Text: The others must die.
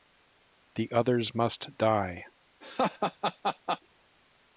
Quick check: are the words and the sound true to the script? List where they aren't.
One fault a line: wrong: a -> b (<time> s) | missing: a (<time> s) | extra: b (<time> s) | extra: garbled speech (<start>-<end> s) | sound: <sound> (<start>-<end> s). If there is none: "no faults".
sound: laugh (2.6-3.8 s)